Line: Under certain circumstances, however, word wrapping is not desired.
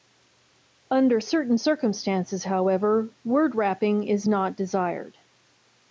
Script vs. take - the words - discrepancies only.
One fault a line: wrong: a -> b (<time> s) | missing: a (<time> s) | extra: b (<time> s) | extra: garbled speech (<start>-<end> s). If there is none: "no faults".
no faults